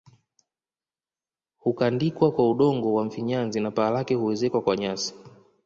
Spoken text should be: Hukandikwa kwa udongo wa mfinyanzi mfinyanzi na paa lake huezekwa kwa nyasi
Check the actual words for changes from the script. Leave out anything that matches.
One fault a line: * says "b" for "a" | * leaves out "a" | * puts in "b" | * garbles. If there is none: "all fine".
* leaves out "mfinyanzi"